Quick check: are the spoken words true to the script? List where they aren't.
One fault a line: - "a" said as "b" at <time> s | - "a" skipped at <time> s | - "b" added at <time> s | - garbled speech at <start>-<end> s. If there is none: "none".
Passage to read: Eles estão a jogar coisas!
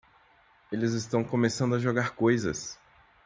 - "começando" added at 1.2 s